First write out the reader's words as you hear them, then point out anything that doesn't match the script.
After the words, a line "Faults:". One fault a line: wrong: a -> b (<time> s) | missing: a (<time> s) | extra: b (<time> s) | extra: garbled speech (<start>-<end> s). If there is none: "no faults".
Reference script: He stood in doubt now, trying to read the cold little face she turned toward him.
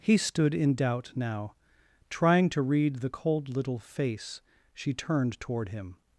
He stood in doubt now, trying to read the cold little face she turned toward him.
Faults:
no faults